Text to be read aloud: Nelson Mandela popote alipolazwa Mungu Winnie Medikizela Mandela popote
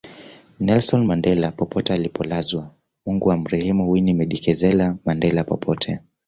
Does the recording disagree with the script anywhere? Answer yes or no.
yes